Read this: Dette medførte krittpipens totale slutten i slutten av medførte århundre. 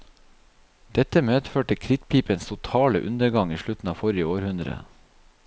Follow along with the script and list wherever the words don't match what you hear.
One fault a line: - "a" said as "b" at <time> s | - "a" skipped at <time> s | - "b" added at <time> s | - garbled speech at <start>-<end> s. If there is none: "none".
- "slutten" said as "undergang" at 3.1 s
- "medførte" said as "forrige" at 4.0 s